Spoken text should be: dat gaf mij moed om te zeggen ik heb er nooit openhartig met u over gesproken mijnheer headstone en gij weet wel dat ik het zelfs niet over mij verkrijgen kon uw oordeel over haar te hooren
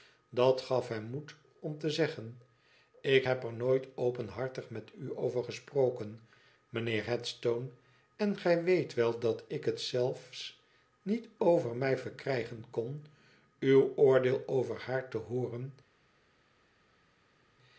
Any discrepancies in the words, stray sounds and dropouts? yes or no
yes